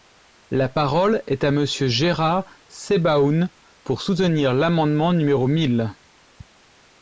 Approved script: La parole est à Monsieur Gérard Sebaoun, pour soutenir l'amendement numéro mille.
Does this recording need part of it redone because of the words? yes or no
no